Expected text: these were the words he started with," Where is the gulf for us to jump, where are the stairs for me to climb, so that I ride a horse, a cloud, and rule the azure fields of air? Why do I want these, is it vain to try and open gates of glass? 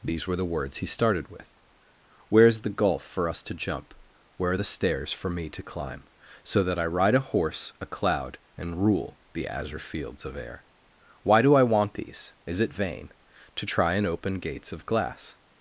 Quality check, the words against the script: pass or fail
pass